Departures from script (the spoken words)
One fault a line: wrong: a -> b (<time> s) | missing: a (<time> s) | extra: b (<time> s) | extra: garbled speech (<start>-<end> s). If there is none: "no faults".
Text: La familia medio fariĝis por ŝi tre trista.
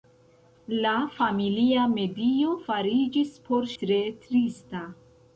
missing: ŝi (3.7 s)